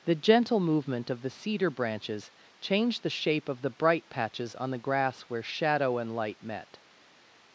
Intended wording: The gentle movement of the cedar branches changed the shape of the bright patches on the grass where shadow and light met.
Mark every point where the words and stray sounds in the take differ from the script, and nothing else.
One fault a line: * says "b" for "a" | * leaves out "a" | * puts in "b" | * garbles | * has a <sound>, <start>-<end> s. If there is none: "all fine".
all fine